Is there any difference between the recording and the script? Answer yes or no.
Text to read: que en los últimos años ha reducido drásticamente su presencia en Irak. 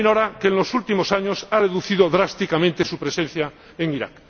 no